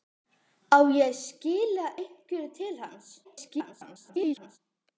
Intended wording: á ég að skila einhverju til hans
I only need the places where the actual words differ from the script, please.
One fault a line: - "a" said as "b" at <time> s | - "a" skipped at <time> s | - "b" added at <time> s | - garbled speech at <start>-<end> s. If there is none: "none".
- garbled speech at 3.2-4.6 s